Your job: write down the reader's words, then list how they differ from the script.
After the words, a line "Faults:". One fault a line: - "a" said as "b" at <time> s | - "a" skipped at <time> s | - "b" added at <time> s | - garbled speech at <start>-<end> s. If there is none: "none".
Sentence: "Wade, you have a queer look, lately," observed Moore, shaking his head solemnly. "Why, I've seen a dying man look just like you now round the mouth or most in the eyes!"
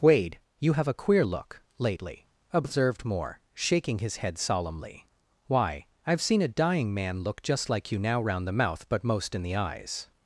"Wade, you have a queer look, lately," observed Moore, shaking his head solemnly. "Why, I've seen a dying man look just like you now round the mouth but most in the eyes!"
Faults:
- "or" said as "but" at 8.9 s